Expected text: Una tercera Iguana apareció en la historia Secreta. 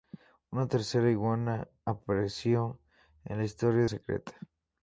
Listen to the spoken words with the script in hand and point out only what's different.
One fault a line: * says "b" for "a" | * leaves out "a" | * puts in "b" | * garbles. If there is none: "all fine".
all fine